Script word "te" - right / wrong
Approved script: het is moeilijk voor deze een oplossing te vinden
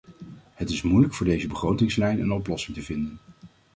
right